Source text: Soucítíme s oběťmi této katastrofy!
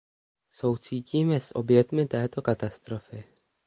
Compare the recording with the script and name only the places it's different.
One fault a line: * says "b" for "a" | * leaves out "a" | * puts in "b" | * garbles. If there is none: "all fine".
all fine